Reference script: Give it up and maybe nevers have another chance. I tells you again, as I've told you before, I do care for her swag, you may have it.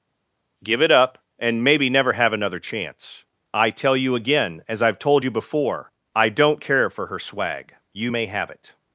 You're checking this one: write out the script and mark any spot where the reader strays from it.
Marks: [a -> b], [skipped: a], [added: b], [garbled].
Give it up and maybe [nevers -> never] have another chance. I [tells -> tell] you again, as I've told you before, I [do -> don't] care for her swag, you may have it.